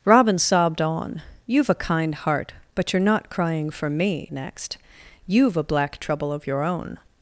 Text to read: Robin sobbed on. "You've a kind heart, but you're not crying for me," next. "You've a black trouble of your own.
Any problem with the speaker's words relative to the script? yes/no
no